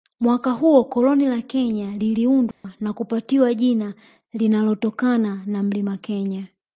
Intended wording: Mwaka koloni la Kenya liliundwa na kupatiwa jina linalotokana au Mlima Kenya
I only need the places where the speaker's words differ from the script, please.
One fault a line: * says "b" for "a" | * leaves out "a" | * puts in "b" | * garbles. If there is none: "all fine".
* puts in "huo"
* says "na" for "au"